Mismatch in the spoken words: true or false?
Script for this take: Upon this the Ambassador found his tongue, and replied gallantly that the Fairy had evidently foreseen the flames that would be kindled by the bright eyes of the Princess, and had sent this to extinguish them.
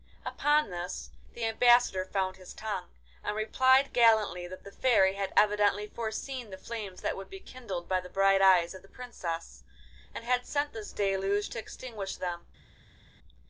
true